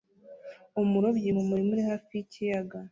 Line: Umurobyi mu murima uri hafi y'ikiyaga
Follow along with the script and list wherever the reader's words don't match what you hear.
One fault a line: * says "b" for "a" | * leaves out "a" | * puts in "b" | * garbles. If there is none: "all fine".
all fine